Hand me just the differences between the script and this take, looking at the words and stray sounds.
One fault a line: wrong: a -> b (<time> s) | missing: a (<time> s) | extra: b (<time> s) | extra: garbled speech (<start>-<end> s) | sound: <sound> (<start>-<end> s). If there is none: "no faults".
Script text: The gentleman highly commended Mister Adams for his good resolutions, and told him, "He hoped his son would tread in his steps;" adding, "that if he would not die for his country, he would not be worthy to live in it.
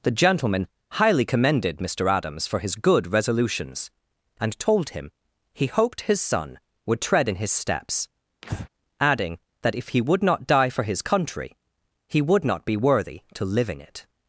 sound: breath (8.4-8.7 s)